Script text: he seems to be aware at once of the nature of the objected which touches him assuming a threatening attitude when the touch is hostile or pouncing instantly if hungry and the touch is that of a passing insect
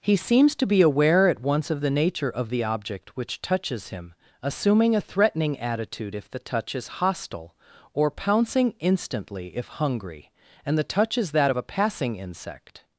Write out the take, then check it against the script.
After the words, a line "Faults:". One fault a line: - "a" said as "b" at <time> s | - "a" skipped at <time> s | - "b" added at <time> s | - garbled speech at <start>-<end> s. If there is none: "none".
he seems to be aware at once of the nature of the object which touches him assuming a threatening attitude if the touch is hostile or pouncing instantly if hungry and the touch is that of a passing insect
Faults:
- "objected" said as "object" at 2.6 s
- "when" said as "if" at 6.1 s